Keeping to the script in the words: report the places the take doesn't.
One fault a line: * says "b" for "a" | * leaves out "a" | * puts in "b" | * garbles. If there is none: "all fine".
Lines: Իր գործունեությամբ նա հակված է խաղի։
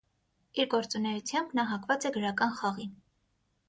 * puts in "գրական"